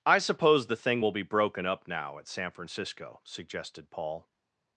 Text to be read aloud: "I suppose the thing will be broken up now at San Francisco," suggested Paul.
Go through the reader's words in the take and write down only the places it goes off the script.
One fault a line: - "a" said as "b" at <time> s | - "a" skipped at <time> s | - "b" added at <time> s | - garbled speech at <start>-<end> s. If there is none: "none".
none